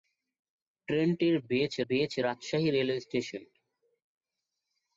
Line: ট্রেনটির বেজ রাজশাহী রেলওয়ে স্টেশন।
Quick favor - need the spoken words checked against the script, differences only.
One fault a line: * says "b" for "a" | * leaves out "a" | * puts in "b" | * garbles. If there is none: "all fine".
* puts in "বেজ"